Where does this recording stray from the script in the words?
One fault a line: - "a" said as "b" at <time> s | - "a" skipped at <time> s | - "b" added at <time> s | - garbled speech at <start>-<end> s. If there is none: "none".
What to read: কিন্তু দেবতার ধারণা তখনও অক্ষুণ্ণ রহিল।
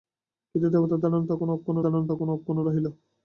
- "ধারণা তখনও অক্ষুণ্ণ" added at 1.8 s